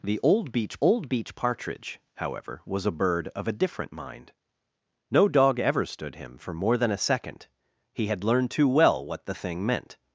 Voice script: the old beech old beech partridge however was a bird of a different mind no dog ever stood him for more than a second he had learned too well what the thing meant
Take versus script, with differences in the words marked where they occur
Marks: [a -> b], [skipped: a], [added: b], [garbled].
the old beech old beech partridge however was a bird of a different mind no dog ever stood him for more than a second he had learned too well what the thing meant